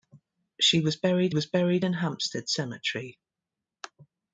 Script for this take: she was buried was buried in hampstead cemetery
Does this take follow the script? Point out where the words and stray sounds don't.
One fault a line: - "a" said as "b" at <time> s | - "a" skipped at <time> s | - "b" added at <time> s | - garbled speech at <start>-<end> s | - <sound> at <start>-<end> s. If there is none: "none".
none